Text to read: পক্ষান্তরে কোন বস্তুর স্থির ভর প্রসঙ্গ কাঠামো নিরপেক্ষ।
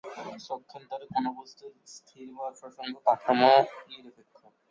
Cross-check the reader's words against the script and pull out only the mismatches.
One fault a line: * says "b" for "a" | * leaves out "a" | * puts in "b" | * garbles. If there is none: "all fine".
all fine